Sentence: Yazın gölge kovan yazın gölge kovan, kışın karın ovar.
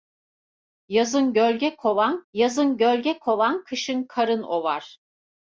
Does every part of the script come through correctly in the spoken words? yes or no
yes